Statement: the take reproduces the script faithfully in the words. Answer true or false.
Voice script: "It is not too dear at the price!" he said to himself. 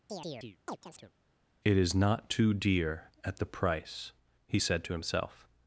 true